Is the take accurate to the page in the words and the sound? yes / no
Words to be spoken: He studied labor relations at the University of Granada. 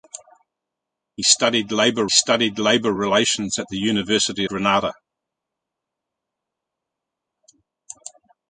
no